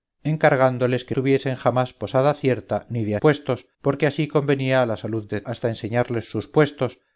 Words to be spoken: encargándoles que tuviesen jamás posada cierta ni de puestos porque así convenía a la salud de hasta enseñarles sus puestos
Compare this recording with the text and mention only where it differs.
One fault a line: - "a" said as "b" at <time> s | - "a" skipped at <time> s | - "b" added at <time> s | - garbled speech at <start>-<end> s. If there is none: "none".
none